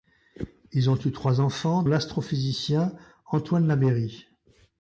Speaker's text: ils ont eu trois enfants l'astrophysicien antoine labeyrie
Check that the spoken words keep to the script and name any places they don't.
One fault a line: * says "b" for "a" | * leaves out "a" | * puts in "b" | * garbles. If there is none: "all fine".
all fine